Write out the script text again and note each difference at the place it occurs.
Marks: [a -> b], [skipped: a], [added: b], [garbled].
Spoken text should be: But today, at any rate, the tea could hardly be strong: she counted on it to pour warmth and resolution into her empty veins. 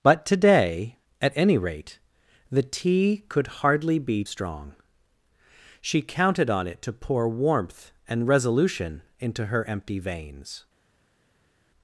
But today, at any rate, the tea could hardly be strong: she counted on it to pour warmth and resolution into her empty veins.